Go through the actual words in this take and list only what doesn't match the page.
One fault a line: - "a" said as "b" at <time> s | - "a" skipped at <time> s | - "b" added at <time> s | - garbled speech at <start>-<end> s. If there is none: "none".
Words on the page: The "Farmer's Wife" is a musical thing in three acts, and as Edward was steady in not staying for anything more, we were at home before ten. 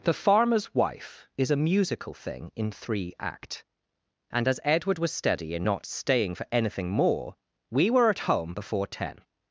- "acts" said as "act" at 3.2 s